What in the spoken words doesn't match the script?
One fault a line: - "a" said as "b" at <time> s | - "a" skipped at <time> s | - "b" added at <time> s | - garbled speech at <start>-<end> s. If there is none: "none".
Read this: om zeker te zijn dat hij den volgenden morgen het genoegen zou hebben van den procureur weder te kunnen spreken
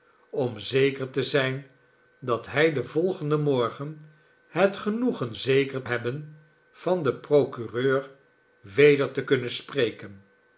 - "zou" said as "zeker" at 5.3 s